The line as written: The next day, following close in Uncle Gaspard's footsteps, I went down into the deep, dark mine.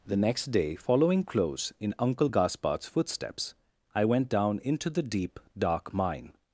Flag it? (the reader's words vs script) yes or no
no